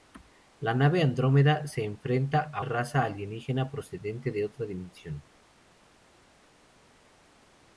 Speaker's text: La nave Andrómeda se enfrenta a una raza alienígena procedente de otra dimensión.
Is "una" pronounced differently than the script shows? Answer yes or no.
yes